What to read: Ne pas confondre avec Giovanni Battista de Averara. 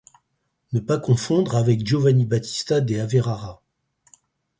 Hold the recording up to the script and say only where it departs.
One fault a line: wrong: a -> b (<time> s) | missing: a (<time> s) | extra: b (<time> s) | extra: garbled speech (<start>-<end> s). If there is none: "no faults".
no faults